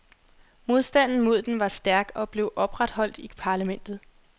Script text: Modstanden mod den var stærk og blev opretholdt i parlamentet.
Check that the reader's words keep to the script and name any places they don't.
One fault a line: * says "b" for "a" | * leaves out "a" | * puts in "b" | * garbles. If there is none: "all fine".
all fine